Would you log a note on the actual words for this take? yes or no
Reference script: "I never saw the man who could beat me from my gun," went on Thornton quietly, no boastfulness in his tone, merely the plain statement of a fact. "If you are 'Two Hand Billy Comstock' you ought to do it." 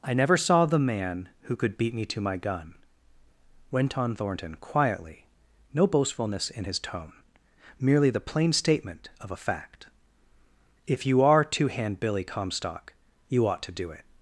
yes